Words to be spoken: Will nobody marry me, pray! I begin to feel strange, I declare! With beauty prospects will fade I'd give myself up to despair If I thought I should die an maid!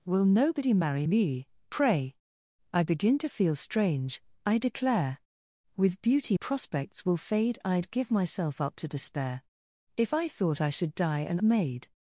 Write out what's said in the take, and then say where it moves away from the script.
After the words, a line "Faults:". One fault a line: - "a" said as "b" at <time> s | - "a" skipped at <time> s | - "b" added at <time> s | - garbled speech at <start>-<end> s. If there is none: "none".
Will nobody marry me, pray! I begin to feel strange, I declare! With beauty prospects will fade I'd give myself up to despair If I thought I should die an maid!
Faults:
none